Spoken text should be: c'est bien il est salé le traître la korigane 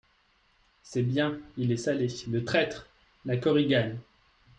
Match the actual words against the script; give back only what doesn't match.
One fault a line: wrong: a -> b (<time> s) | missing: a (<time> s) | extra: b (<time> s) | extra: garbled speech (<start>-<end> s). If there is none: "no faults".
no faults